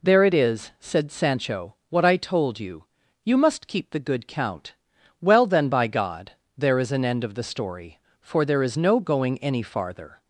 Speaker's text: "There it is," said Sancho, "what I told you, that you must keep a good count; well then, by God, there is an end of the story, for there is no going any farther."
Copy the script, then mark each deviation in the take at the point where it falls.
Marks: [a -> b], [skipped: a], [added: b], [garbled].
"There it is," said Sancho, "what I told you, [skipped: that] you must keep [a -> the] good count; well then, by God, there is an end of the story, for there is no going any farther."